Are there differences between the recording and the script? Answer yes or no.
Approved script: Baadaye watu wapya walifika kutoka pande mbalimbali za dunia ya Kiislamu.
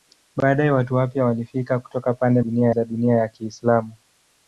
yes